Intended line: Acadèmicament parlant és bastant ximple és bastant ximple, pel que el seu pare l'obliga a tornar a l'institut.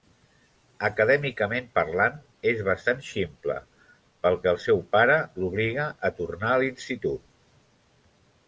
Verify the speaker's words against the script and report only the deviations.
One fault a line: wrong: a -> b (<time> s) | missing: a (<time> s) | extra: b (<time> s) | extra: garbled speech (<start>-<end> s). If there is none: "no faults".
missing: és bastant ximple (3.6 s)